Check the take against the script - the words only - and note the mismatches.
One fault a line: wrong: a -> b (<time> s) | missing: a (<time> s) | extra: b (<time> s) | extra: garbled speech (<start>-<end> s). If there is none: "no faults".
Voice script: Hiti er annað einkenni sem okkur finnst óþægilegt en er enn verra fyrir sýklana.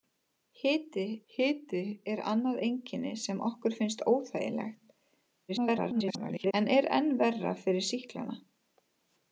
extra: hiti (1.3 s)
extra: garbled speech (5.5-6.5 s)